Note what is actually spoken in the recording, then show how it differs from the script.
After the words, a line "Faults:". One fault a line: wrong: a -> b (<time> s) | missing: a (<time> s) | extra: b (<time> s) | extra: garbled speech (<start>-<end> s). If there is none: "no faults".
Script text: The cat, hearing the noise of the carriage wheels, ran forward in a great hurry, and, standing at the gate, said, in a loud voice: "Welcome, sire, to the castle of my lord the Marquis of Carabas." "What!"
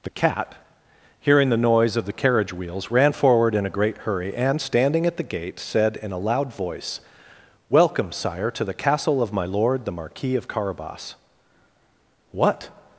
The cat, hearing the noise of the carriage wheels, ran forward in a great hurry, and, standing at the gate, said, in a loud voice: "Welcome, sire, to the castle of my lord the Marquis of Carabas." "What!"
Faults:
no faults